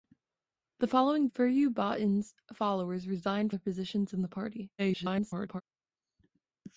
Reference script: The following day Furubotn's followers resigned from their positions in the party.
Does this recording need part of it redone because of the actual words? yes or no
yes